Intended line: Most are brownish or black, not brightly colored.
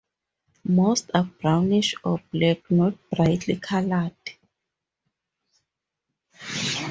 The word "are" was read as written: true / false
true